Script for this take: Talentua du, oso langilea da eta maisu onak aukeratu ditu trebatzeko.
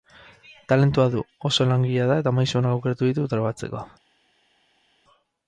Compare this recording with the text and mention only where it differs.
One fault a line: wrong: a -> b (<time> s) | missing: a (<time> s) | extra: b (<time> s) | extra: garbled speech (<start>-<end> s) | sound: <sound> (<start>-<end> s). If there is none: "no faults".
no faults